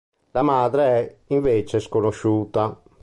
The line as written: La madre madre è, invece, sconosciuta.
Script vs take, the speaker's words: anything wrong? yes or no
yes